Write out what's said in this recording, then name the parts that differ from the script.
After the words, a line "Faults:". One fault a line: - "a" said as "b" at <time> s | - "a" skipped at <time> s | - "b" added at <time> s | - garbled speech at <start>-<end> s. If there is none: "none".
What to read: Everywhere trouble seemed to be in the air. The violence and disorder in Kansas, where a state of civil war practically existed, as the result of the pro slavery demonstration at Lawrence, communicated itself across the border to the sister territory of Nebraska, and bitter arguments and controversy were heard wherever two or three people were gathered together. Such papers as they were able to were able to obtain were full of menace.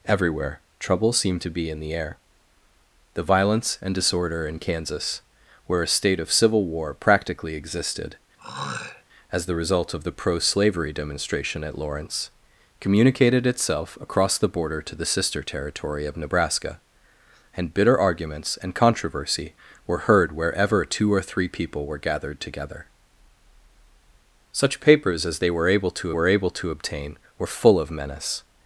Everywhere trouble seemed to be in the air. The violence and disorder in Kansas, where a state of civil war practically existed, as the result of the pro slavery demonstration at Lawrence, communicated itself across the border to the sister territory of Nebraska, and bitter arguments and controversy were heard wherever two or three people were gathered together. Such papers as they were able to were able to obtain were full of menace.
Faults:
none